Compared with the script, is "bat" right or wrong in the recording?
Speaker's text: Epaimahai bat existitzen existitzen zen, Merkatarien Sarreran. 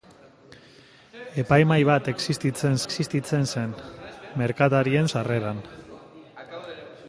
right